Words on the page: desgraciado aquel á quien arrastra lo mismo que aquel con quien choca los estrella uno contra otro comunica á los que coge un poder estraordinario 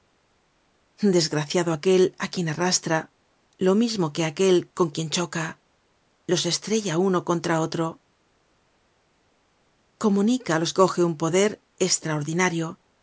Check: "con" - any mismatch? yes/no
no